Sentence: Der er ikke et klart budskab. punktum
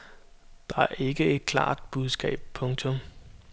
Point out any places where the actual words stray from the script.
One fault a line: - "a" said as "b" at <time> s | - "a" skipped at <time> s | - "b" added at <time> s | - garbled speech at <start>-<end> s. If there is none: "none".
none